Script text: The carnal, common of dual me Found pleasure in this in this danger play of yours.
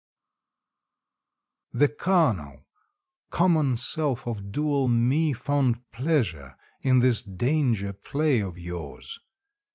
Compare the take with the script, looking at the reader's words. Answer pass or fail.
fail